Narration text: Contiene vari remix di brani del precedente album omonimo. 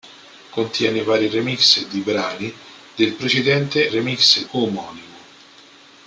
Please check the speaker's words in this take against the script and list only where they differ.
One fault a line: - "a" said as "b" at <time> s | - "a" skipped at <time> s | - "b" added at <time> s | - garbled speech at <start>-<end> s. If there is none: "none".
- "album" said as "remix" at 3.9 s